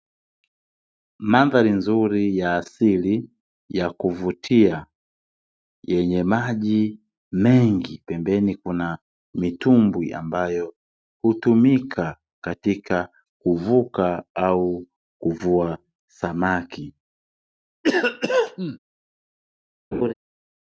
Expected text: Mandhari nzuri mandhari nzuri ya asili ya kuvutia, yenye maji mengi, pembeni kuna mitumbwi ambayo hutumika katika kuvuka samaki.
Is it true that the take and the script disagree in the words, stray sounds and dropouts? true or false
true